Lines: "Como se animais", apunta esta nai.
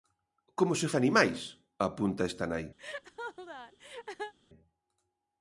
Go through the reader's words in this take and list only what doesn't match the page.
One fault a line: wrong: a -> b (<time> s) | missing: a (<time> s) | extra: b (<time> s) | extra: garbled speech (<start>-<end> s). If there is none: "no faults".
no faults